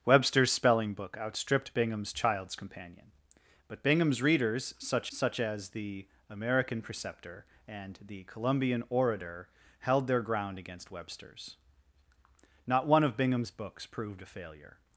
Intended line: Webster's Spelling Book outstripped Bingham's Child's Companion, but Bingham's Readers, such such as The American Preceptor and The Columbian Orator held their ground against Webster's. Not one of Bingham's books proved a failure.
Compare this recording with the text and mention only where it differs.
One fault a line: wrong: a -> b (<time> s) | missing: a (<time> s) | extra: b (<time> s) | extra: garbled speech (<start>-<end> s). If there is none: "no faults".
no faults